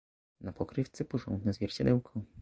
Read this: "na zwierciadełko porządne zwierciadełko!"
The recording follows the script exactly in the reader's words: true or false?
false